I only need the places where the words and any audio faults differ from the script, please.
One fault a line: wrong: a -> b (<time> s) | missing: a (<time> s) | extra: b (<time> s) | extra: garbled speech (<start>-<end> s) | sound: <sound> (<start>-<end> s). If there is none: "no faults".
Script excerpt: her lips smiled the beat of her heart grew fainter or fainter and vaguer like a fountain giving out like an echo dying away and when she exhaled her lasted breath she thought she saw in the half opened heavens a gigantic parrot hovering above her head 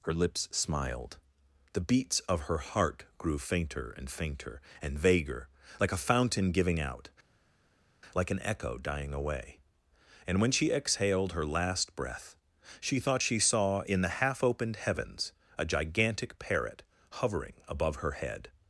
wrong: beat -> beats (1.9 s)
wrong: or -> and (3.9 s)
wrong: lasted -> last (11.5 s)